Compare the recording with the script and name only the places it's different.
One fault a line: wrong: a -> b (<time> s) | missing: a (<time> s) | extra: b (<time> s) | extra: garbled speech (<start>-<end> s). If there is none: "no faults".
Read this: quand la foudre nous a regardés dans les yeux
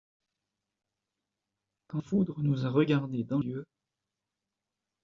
missing: la (2.0 s)
missing: les (3.4 s)